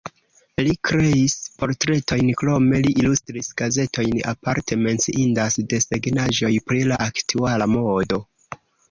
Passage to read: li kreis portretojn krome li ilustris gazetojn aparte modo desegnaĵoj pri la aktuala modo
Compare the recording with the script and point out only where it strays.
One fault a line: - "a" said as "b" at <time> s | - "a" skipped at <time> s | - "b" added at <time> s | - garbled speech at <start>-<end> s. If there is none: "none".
- "modo" said as "menciindas" at 4.8 s